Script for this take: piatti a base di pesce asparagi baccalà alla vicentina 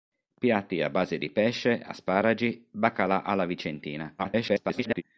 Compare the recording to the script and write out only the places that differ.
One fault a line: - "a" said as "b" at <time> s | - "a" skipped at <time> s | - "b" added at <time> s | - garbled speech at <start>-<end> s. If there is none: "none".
- garbled speech at 4.2-5.0 s